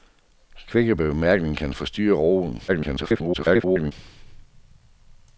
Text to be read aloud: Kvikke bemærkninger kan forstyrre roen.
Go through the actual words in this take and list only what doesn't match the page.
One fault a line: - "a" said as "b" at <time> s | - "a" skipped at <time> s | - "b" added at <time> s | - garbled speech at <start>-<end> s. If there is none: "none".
- garbled speech at 2.7-3.9 s